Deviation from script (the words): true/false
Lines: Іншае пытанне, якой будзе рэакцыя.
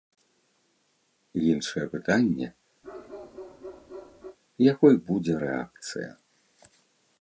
false